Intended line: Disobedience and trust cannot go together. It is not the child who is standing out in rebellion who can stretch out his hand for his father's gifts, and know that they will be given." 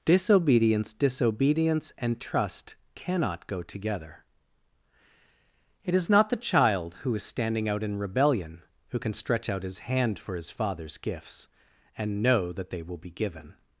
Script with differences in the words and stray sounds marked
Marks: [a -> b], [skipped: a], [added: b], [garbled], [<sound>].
Disobedience [added: disobedience] and trust cannot go together. It is not the child who is standing out in rebellion who can stretch out his hand for his father's gifts, and know that they will be given."